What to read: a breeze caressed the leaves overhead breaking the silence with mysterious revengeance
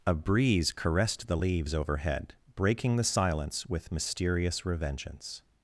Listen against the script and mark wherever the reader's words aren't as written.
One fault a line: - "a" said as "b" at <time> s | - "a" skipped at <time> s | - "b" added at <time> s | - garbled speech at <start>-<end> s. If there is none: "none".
none